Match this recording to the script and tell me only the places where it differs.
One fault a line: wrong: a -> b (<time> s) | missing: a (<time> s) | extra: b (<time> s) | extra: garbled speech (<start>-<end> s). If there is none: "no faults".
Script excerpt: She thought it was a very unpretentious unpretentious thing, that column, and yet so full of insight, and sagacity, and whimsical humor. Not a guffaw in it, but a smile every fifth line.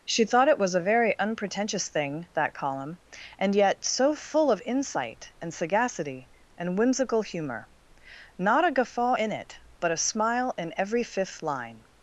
missing: unpretentious (1.9 s)
extra: in (10.6 s)